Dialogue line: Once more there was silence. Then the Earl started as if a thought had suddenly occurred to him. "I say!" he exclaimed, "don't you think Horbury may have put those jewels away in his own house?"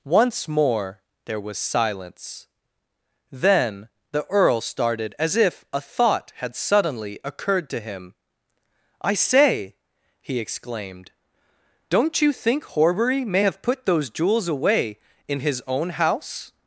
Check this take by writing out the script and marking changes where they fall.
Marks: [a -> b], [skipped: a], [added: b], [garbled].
Once more there was silence. Then the Earl started as if a thought had suddenly occurred to him. "I say!" he exclaimed, "don't you think Horbury may have put those jewels away in his own house?"